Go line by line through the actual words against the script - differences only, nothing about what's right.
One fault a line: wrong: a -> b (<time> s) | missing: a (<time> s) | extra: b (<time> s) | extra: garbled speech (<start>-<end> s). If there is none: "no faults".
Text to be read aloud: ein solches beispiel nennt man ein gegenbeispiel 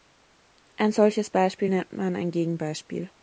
no faults